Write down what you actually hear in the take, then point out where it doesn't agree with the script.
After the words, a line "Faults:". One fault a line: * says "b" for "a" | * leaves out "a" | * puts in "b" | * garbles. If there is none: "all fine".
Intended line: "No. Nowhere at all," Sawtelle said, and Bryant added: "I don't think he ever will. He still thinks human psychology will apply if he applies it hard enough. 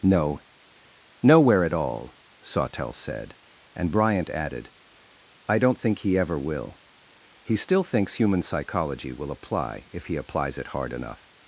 "No. Nowhere at all," Sawtelle said, and Bryant added: "I don't think he ever will. He still thinks human psychology will apply if he applies it hard enough.
Faults:
all fine